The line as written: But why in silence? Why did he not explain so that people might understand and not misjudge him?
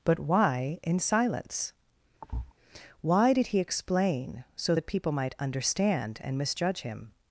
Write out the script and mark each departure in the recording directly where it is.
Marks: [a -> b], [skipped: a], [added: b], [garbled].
But why in silence? Why did he [skipped: not] explain so that people might understand and [skipped: not] misjudge him?